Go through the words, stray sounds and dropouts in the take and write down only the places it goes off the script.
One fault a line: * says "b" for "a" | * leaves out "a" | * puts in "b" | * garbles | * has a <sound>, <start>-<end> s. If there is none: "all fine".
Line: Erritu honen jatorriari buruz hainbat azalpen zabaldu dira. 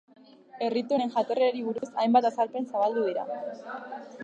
* has a dropout, 1.8-1.8 s